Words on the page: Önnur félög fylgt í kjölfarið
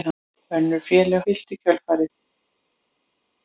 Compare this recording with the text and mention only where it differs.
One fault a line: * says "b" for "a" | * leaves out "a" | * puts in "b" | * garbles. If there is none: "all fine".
all fine